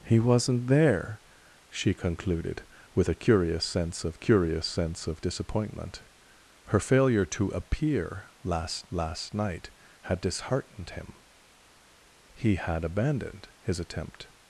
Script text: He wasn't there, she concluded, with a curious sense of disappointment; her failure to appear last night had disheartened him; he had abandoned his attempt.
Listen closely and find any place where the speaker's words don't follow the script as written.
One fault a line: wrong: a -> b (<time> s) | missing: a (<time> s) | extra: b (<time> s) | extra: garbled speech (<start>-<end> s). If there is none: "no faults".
extra: curious sense of (4.2 s)
extra: last (8.9 s)